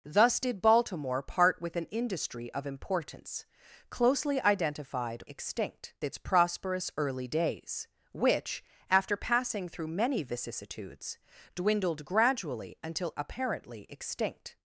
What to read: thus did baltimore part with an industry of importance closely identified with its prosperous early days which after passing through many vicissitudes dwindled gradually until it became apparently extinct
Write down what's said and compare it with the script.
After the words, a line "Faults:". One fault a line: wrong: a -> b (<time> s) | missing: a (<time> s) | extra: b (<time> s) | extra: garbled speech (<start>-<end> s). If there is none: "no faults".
thus did baltimore part with an industry of importance closely identified extinct its prosperous early days which after passing through many vicissitudes dwindled gradually until apparently extinct
Faults:
wrong: with -> extinct (5.3 s)
missing: it became (13.1 s)